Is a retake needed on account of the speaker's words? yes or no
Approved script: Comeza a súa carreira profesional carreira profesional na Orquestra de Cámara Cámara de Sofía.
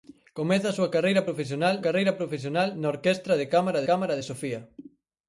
no